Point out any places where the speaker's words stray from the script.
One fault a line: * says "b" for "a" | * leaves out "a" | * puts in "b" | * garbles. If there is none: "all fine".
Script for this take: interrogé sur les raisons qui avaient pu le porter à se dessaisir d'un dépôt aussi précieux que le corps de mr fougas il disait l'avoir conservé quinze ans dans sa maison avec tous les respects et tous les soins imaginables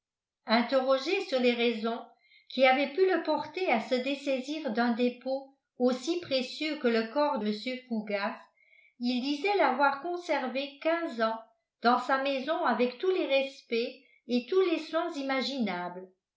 * leaves out "de"